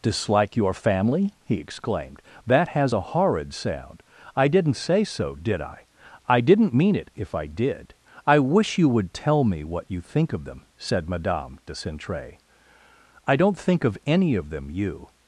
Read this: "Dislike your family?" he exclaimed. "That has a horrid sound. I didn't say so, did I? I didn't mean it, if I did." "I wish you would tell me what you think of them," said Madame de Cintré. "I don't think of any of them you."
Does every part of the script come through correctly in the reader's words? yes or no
yes